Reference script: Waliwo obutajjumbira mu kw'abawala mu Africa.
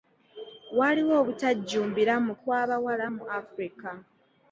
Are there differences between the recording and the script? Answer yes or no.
no